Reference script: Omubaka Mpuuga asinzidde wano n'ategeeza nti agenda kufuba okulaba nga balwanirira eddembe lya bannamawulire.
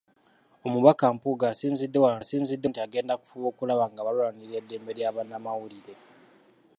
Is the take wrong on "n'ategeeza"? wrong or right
wrong